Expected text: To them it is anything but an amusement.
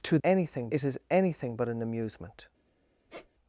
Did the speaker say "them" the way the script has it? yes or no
no